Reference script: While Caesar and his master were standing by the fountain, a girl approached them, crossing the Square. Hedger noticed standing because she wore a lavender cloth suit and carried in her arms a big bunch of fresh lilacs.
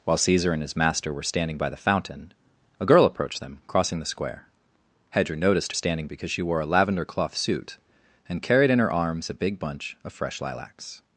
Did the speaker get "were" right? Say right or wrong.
right